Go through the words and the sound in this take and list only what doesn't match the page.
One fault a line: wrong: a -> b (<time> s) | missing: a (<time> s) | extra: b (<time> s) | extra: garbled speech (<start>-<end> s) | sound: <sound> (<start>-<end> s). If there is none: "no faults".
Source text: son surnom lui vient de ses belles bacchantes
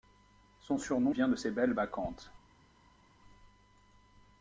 missing: lui (1.1 s)